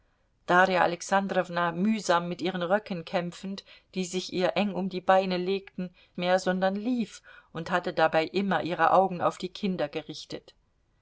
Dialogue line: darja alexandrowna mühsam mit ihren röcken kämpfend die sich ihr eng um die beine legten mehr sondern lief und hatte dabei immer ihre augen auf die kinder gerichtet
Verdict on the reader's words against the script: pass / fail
pass